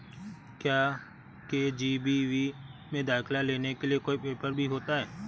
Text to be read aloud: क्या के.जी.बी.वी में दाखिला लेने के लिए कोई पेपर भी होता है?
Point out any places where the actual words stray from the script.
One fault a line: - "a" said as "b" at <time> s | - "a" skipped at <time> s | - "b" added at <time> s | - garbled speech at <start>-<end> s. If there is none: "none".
none